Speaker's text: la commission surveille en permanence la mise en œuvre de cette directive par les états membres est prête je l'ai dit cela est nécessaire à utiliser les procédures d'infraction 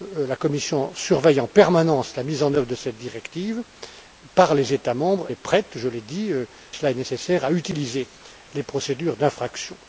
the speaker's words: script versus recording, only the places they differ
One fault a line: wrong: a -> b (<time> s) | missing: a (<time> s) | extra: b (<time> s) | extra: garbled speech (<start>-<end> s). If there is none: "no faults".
no faults